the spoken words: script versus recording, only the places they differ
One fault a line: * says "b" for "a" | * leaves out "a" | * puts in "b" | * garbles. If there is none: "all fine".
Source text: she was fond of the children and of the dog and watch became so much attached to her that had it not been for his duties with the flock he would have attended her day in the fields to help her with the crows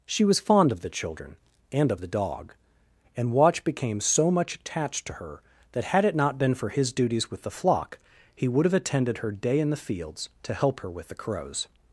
all fine